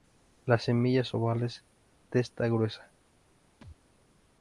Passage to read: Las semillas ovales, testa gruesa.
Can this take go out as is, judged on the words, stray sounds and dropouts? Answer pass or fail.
fail